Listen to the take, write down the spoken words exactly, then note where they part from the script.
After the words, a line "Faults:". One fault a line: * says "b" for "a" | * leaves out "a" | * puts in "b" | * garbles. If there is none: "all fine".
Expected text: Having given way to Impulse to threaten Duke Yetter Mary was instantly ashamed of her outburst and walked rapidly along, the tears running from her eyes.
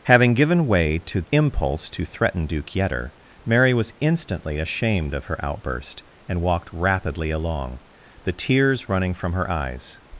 Having given way to Impulse to threaten Duke Yetter Mary was instantly ashamed of her outburst and walked rapidly along, the tears running from her eyes.
Faults:
all fine